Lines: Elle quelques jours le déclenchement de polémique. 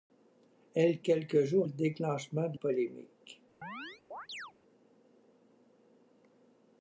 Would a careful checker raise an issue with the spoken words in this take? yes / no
no